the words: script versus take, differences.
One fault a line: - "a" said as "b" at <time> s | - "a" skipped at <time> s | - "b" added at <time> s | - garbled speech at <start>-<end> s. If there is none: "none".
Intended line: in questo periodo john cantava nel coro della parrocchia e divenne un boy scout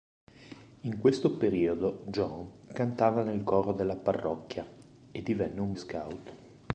- "boy" skipped at 5.8 s